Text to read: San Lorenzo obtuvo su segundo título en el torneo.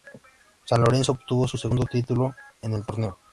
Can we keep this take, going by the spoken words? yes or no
yes